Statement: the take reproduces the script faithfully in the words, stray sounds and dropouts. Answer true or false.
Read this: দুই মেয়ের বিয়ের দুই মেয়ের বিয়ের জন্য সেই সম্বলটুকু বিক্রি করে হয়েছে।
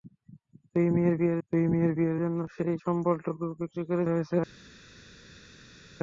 true